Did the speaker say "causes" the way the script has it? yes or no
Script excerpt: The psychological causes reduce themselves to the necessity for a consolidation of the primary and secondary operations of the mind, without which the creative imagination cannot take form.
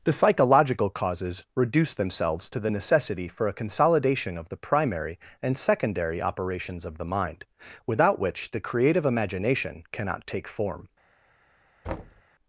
yes